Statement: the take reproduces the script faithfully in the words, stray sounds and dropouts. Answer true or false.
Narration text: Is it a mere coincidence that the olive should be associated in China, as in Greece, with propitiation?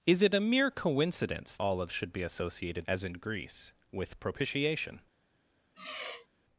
false